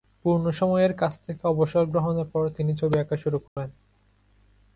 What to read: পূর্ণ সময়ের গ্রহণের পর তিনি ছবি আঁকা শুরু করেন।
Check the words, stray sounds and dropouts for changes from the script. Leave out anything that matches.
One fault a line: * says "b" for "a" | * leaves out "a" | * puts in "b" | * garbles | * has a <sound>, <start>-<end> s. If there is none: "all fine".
* puts in "কাজ থেকে অবসর"
* has a dropout, 3.5-3.6 s